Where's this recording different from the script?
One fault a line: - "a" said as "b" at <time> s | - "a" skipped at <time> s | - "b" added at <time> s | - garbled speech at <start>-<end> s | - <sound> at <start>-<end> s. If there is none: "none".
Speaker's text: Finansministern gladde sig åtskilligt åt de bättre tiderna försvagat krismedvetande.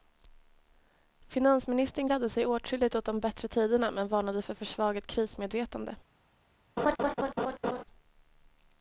- "men varnade för" added at 3.9 s
- laugh at 6.8-7.8 s